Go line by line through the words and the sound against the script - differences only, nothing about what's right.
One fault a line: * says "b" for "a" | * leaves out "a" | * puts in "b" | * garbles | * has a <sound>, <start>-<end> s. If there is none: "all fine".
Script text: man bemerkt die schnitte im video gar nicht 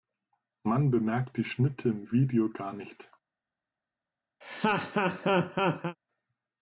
* has a laugh, 4.4-6.0 s